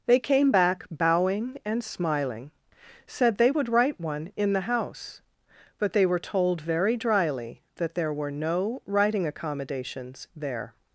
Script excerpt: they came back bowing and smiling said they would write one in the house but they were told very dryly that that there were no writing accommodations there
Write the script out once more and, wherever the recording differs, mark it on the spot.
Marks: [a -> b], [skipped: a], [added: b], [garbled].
they came back bowing and smiling said they would write one in the house but they were told very dryly that [skipped: that] there were no writing accommodations there